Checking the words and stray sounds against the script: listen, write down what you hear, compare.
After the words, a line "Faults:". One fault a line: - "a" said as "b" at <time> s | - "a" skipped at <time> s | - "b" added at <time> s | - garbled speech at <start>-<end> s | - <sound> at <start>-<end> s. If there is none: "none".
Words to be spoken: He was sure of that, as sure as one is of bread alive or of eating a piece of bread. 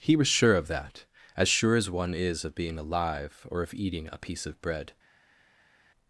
He was sure of that, as sure as one is of being alive or of eating a piece of bread.
Faults:
- "bread" said as "being" at 2.6 s